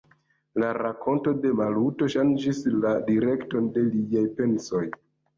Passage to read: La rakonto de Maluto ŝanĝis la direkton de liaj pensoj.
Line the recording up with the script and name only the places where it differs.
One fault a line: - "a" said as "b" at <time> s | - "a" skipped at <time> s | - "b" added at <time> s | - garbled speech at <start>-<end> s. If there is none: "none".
none